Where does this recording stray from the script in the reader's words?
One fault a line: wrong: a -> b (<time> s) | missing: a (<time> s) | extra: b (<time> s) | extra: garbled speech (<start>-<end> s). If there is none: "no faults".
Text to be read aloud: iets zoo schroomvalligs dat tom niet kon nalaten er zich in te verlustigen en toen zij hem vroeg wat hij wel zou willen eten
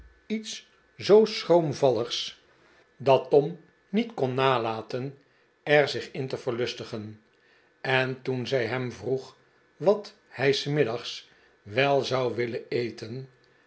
extra: s middags (10.5 s)